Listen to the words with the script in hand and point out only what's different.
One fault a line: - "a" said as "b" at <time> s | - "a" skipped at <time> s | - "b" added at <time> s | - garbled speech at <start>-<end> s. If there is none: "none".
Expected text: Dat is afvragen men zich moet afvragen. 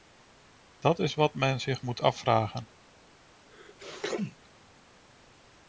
- "afvragen" said as "wat" at 1.1 s